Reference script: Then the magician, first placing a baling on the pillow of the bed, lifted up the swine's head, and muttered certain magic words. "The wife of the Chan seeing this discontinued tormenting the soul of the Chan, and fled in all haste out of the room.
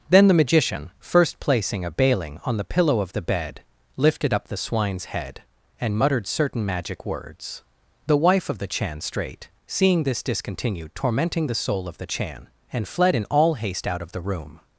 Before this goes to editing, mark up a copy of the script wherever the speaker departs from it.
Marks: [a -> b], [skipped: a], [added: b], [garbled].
Then the magician, first placing a baling on the pillow of the bed, lifted up the swine's head, and muttered certain magic words. "The wife of the Chan [added: strait] seeing this discontinued tormenting the soul of the Chan, and fled in all haste out of the room.